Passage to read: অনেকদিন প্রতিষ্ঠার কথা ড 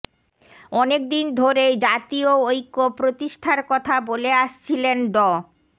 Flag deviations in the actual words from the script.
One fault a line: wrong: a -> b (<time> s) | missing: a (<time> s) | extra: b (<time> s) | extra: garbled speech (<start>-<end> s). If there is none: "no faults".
extra: ধরেই জাতীয় ঐক্য (1.4 s)
extra: বলে আসছিলেন (4.1 s)